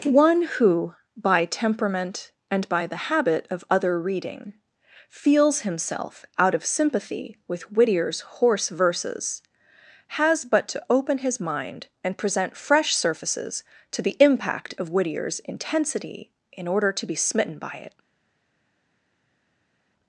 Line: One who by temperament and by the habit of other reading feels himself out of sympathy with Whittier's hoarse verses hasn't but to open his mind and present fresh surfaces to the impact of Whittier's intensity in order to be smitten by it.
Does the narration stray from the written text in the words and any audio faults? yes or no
yes